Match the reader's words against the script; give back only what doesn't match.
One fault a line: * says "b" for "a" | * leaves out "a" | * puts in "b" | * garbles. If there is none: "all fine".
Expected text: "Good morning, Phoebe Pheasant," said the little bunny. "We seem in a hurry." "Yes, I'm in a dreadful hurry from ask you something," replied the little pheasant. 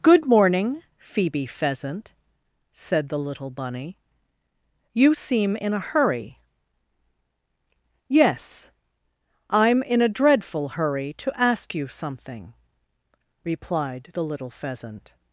* says "You" for "We"
* says "to" for "from"